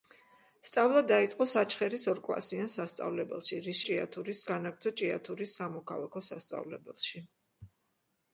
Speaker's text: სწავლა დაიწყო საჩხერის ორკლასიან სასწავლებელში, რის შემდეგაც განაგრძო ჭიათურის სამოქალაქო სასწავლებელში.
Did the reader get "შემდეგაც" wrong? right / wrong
wrong